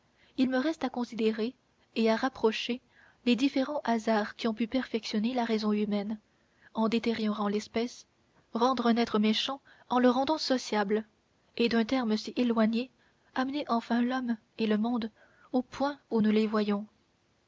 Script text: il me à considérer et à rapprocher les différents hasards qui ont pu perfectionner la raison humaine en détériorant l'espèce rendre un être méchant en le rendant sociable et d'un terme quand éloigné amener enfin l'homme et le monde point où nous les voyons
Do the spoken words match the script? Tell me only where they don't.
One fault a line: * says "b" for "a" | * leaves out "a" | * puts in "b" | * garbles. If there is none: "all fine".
* puts in "reste"
* says "si" for "quand"
* puts in "au"